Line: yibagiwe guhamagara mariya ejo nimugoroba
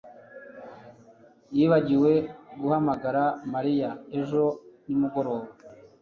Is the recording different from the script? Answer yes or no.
no